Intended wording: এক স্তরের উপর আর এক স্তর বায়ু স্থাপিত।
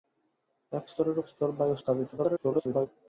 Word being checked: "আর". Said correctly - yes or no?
no